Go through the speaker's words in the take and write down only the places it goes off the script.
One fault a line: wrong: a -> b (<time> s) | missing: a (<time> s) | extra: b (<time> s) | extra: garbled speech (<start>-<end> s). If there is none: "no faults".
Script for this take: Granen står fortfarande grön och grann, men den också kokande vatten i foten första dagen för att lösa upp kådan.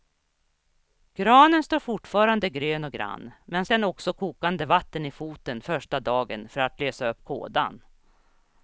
no faults